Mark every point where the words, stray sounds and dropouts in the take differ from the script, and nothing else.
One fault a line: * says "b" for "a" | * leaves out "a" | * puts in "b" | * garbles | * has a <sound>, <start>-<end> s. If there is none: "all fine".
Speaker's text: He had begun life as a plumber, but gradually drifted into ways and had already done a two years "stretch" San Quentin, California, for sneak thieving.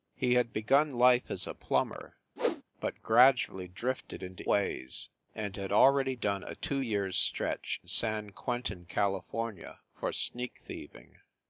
* has a whoosh, 2.4-2.6 s